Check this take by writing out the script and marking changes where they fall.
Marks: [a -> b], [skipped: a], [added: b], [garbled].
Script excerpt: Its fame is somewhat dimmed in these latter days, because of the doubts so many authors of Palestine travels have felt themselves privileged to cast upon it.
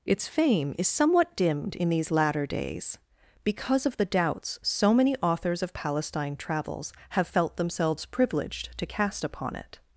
Its fame is somewhat dimmed in these latter days, because of the doubts so many authors of Palestine travels have felt themselves privileged to cast upon it.